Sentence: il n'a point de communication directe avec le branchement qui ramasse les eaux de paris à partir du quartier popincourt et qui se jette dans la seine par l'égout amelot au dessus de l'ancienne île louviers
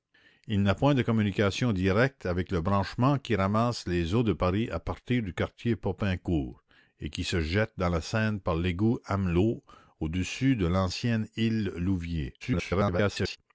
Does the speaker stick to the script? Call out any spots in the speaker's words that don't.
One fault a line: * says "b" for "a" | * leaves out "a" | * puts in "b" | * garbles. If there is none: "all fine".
* garbles